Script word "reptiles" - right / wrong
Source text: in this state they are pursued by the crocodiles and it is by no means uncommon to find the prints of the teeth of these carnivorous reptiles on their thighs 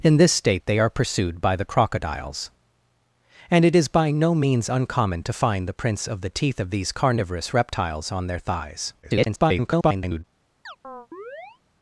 right